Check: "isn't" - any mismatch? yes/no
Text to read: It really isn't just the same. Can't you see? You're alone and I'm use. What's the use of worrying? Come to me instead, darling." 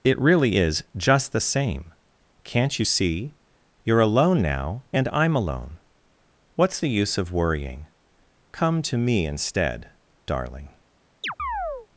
yes